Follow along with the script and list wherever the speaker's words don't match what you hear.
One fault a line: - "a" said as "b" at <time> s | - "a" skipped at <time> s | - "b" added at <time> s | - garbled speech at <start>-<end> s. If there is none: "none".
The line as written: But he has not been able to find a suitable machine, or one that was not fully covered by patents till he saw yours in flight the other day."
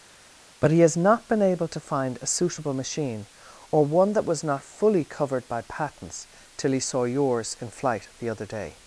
none